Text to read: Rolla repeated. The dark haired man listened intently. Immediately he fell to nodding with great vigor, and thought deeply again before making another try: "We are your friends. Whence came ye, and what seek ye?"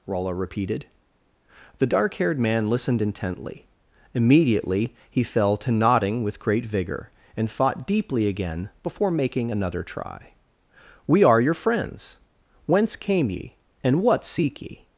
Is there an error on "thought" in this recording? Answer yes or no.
yes